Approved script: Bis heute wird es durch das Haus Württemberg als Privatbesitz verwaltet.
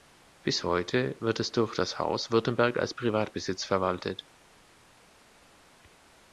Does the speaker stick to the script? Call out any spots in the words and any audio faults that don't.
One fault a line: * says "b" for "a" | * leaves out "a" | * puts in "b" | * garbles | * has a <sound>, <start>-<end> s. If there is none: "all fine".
all fine